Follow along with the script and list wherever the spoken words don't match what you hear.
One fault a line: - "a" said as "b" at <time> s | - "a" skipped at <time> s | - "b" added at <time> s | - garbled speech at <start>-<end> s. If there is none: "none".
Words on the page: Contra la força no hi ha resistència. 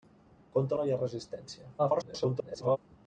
- "la força" skipped at 0.8 s
- garbled speech at 1.8-2.8 s